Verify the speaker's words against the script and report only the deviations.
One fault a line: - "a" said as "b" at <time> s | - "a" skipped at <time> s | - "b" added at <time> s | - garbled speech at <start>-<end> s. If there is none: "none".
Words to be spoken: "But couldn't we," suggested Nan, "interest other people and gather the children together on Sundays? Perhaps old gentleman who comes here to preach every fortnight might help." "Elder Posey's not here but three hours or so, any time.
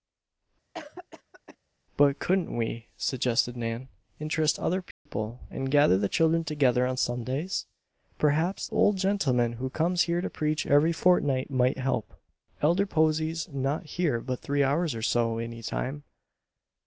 none